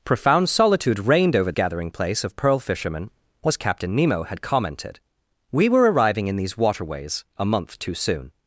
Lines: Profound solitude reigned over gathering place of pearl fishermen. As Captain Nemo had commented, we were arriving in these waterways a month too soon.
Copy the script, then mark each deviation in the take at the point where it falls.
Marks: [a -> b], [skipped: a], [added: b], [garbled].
Profound solitude reigned over gathering place of pearl fishermen. As Captain Nemo had commented, we were arriving in these waterways a month too soon.